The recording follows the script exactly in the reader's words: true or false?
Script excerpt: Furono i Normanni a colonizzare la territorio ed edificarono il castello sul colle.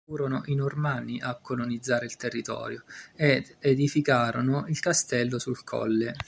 false